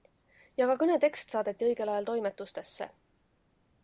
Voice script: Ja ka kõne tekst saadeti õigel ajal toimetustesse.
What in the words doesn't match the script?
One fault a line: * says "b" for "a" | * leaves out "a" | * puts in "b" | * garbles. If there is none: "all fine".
all fine